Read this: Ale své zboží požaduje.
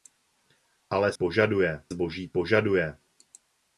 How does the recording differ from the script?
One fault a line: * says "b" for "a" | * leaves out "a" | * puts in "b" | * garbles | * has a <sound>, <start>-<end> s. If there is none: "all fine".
* says "požaduje" for "své"